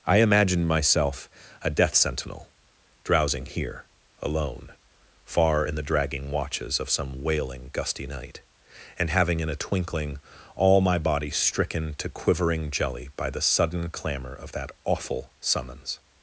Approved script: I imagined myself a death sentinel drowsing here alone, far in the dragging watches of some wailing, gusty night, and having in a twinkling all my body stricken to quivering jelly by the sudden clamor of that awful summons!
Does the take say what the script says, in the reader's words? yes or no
yes